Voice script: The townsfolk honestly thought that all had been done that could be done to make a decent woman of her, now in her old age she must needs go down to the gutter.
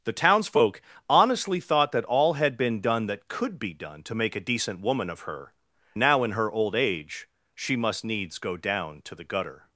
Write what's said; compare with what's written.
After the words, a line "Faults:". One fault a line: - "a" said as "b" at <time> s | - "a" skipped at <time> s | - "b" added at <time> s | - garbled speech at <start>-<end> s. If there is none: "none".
The townsfolk honestly thought that all had been done that could be done to make a decent woman of her, now in her old age she must needs go down to the gutter.
Faults:
none